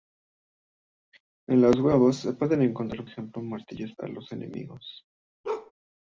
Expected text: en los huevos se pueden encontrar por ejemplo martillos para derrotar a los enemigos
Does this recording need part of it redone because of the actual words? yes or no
yes